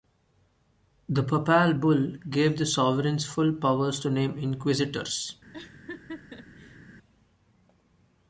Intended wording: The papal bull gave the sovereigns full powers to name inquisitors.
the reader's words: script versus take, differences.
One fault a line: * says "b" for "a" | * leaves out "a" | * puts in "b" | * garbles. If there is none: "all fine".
all fine